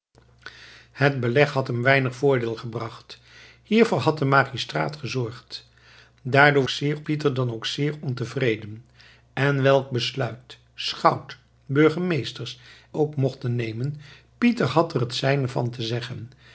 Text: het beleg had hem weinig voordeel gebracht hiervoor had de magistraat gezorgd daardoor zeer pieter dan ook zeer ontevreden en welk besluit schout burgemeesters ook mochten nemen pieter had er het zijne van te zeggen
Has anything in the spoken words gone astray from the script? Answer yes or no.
no